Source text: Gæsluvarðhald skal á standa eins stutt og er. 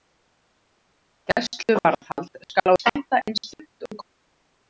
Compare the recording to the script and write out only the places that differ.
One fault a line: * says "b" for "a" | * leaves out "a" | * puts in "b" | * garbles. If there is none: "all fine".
all fine